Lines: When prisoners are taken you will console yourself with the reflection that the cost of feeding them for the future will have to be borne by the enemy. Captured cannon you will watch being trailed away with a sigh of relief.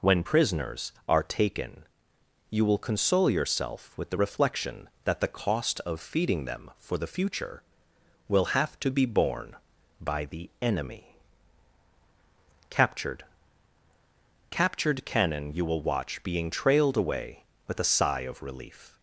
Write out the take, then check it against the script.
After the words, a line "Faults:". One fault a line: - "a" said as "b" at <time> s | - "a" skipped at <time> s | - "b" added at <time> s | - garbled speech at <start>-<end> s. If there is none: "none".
When prisoners are taken you will console yourself with the reflection that the cost of feeding them for the future will have to be borne by the enemy. Captured Captured cannon you will watch being trailed away with a sigh of relief.
Faults:
- "Captured" added at 14.5 s